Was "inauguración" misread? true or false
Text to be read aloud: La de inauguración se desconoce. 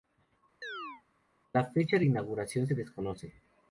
false